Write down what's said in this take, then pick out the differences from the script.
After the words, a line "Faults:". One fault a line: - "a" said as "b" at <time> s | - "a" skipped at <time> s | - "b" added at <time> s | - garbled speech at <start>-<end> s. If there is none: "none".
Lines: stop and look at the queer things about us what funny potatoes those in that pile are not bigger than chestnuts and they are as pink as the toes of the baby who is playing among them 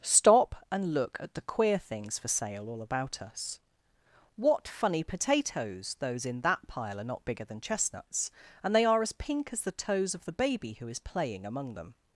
stop and look at the queer things for sale all about us what funny potatoes those in that pile are not bigger than chestnuts and they are as pink as the toes of the baby who is playing among them
Faults:
- "for sale all" added at 2.2 s